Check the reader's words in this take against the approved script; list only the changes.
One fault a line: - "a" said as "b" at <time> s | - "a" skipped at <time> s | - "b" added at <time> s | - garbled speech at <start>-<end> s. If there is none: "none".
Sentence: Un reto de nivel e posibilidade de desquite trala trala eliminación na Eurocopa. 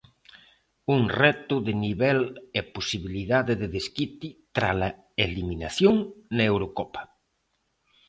- "trala" skipped at 4.9 s